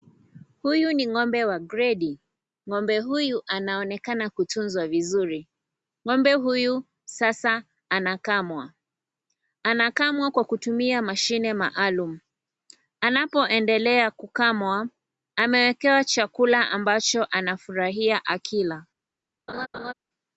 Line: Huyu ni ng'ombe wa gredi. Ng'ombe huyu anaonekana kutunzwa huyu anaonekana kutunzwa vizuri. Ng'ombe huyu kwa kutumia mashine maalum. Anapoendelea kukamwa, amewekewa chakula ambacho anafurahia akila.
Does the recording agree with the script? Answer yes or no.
no